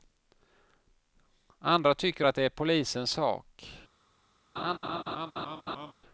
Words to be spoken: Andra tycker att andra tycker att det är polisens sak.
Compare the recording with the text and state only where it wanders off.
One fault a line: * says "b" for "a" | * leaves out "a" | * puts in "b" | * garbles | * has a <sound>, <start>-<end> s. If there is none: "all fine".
* leaves out "andra tycker att"
* has a laugh, 4.6-5.9 s